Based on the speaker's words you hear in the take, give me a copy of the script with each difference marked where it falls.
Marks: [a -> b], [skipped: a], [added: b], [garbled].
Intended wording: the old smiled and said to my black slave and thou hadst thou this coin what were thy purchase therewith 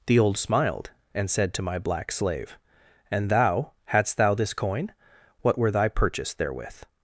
the old smiled and said to my black slave and thou hadst thou this coin what were thy purchase therewith